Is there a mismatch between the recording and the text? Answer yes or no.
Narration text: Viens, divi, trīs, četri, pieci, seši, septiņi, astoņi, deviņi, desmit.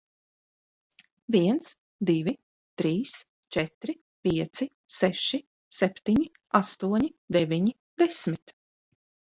no